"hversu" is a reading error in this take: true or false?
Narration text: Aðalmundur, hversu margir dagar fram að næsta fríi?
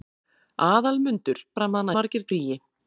true